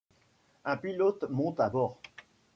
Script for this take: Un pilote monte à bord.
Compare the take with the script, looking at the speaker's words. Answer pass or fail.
pass